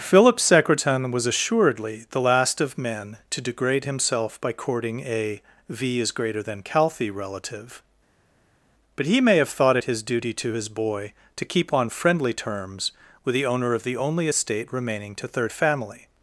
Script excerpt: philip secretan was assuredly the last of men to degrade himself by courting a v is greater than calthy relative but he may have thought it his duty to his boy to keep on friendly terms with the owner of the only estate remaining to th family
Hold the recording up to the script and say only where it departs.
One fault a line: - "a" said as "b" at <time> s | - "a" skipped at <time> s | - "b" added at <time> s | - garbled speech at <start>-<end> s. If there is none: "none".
- "th" said as "third" at 15.3 s